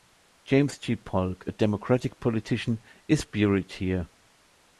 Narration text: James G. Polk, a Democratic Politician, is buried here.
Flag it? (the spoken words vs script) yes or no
no